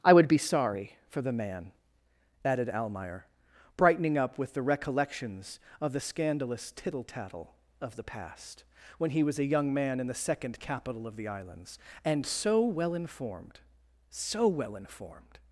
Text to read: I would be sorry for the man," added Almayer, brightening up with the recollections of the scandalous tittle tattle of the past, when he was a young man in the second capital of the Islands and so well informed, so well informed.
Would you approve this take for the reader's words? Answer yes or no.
yes